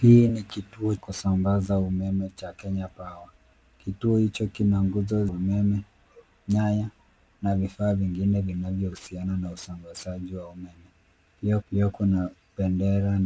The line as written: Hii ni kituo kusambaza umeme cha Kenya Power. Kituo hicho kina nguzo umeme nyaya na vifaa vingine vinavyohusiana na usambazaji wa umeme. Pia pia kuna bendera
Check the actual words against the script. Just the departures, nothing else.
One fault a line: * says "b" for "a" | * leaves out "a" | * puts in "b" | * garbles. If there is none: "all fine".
all fine